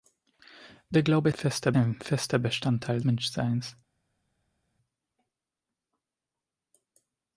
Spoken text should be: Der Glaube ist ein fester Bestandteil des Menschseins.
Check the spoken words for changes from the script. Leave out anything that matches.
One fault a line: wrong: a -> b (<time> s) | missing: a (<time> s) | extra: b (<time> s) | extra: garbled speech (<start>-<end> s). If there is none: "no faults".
wrong: ist -> fester (1.3 s)
missing: des (3.0 s)